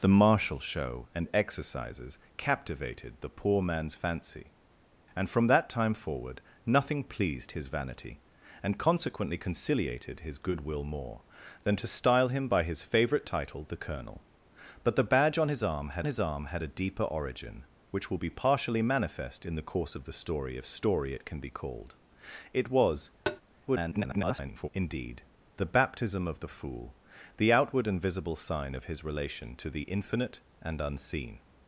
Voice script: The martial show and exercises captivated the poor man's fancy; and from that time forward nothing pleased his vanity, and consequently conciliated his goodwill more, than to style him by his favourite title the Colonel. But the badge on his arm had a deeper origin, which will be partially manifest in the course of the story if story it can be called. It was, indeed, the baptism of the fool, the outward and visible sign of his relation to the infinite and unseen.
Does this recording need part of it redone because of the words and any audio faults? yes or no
yes